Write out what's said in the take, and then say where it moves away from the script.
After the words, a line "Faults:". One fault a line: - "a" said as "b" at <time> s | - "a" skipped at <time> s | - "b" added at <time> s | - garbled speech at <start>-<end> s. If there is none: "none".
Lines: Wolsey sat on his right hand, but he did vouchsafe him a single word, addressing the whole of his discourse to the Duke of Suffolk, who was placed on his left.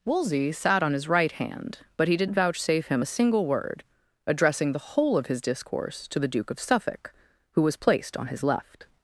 Wolsey sat on his right hand, but he did vouchsafe him a single word, addressing the whole of his discourse to the Duke of Suffolk, who was placed on his left.
Faults:
none